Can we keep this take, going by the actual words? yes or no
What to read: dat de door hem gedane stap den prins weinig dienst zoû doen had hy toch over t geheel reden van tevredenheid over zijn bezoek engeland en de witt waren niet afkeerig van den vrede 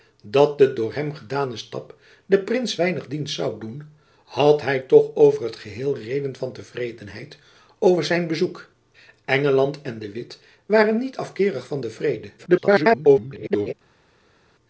no